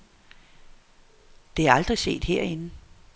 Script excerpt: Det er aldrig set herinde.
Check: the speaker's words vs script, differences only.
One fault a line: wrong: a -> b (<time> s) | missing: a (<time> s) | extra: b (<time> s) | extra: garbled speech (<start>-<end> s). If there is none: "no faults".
no faults